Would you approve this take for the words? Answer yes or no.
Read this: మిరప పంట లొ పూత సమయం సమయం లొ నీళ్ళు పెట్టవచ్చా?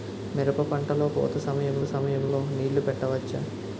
yes